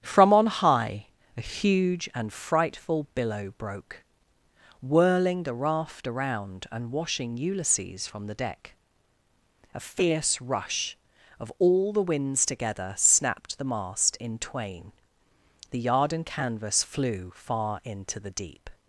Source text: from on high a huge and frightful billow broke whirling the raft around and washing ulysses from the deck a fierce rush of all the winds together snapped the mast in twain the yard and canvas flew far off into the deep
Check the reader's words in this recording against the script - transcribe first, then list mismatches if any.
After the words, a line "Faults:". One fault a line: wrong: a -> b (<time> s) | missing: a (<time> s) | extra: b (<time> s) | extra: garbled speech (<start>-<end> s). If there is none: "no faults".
from on high a huge and frightful billow broke whirling the raft around and washing ulysses from the deck a fierce rush of all the winds together snapped the mast in twain the yard and canvas flew far into the deep
Faults:
missing: off (17.8 s)